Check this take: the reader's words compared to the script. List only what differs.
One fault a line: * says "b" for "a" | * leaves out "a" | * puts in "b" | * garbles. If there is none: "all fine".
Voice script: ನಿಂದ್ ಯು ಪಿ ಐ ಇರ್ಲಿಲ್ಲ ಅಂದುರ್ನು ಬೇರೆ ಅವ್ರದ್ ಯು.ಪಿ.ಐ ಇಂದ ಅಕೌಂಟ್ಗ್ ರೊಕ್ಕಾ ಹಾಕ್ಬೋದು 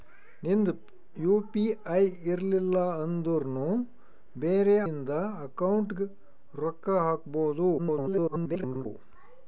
* leaves out "ಅವ್ರದ್ ಯು.ಪಿ.ಐ"
* garbles